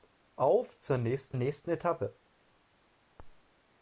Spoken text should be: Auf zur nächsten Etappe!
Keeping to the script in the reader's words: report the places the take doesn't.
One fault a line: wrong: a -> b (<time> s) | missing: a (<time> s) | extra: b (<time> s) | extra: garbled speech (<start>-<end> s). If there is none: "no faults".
extra: nächsten (1.3 s)